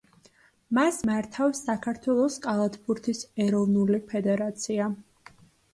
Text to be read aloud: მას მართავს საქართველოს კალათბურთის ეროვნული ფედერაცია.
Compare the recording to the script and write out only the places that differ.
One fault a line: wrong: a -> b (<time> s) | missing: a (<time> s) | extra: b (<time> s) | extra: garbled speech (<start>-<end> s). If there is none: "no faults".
no faults